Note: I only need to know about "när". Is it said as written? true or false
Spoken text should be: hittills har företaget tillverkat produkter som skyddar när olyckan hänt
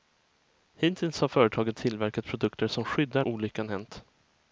false